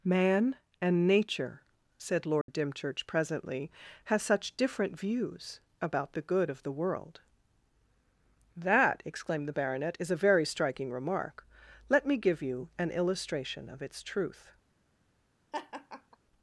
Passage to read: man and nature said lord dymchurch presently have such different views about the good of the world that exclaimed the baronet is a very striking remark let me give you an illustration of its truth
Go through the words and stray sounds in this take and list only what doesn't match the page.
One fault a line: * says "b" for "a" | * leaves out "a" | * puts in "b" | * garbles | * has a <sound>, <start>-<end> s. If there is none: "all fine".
* has a dropout, 2.4-2.5 s
* says "has" for "have"
* has a laugh, 15.5-16.2 s